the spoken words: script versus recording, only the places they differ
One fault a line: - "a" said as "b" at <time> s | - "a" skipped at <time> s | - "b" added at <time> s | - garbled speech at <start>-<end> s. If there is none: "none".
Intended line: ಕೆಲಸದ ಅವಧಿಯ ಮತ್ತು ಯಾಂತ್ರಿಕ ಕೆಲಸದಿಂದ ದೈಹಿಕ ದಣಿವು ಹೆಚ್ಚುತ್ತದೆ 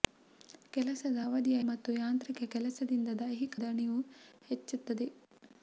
none